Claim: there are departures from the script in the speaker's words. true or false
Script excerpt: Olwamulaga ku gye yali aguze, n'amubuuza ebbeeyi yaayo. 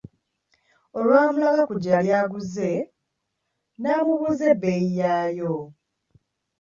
false